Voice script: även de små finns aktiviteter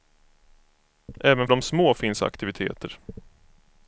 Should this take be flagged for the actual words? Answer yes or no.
no